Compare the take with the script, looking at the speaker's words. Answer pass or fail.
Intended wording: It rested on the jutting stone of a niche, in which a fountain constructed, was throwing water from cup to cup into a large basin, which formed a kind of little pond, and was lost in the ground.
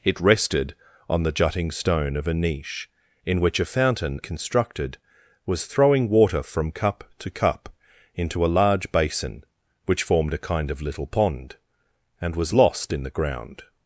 pass